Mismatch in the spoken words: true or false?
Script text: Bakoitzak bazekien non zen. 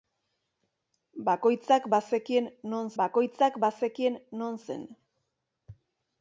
true